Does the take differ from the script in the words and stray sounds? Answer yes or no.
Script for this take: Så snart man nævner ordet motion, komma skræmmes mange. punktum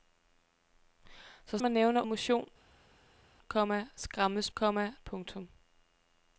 yes